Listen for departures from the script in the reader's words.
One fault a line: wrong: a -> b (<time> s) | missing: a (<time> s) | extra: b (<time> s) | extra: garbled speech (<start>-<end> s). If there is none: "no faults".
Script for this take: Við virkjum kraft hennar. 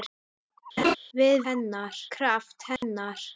wrong: virkjum -> hennar (1.5 s)